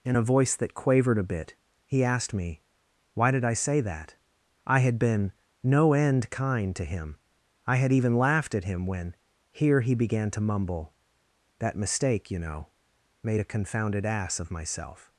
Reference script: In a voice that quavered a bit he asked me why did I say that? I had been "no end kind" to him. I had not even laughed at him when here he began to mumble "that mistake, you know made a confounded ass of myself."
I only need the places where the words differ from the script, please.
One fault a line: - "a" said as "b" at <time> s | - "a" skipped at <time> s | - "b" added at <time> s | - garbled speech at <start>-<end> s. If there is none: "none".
- "not" skipped at 7.9 s